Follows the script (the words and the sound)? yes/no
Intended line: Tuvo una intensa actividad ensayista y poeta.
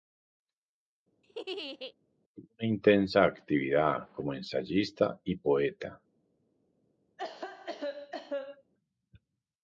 no